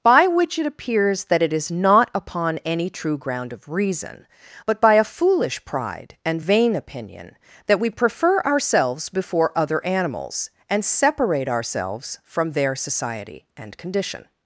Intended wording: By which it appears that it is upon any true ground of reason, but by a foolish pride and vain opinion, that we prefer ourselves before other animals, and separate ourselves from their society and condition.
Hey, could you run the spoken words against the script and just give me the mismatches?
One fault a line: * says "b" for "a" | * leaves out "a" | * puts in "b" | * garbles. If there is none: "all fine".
* puts in "not"